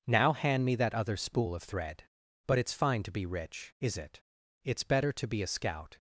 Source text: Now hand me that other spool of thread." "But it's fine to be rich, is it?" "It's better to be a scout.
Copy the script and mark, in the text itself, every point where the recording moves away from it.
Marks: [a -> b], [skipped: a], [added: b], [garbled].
Now hand me that other spool of thread." "But it's fine to be rich, is it?" "It's better to be a scout.